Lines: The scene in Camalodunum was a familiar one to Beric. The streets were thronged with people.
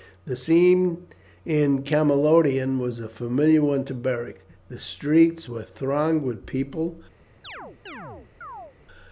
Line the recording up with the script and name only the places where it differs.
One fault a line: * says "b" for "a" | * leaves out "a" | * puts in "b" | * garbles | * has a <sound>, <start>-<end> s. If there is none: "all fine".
* has a chirp, 7.4-8.8 s